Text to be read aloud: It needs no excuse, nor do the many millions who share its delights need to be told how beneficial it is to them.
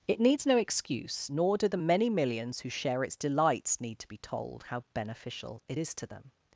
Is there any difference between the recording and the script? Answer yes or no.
no